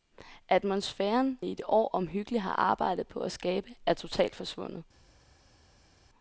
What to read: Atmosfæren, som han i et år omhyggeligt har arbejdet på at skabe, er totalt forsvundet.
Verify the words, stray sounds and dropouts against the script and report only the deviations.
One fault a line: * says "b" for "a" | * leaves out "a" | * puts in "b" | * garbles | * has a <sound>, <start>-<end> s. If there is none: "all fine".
* leaves out "som han"